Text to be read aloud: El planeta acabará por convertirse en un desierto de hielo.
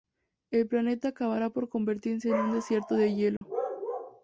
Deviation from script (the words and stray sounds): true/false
true